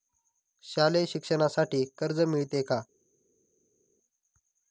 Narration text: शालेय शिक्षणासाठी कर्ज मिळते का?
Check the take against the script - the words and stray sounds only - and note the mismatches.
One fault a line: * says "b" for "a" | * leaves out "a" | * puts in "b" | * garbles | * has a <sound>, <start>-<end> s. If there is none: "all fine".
all fine